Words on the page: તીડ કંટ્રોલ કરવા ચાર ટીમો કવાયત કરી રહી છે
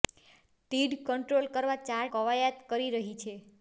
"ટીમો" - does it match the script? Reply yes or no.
no